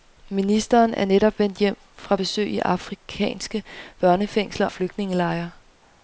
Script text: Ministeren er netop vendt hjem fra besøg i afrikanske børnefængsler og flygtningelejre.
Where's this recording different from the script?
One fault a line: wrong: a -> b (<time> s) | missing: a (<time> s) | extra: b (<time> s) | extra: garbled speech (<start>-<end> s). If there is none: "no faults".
missing: og (4.7 s)